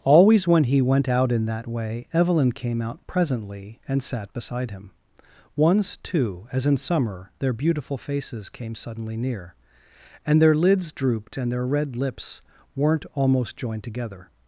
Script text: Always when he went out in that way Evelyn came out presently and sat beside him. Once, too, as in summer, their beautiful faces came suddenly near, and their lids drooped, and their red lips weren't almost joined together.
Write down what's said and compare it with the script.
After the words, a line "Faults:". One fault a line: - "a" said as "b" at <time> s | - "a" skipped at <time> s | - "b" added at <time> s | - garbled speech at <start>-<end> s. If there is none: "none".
Always when he went out in that way Evelyn came out presently and sat beside him. Once, too, as in summer, their beautiful faces came suddenly near, and their lids drooped, and their red lips weren't almost joined together.
Faults:
none